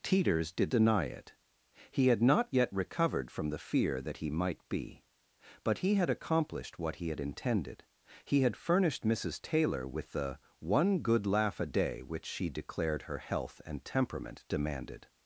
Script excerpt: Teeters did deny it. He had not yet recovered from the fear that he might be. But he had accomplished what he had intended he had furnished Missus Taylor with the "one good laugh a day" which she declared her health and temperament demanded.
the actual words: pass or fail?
pass